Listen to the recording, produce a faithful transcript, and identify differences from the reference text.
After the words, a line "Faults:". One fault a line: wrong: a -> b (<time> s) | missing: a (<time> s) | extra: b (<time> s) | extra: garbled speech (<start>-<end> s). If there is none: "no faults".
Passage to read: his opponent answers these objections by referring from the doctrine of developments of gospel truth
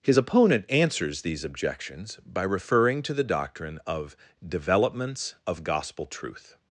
his opponent answers these objections by referring to the doctrine of developments of gospel truth
Faults:
wrong: from -> to (3.0 s)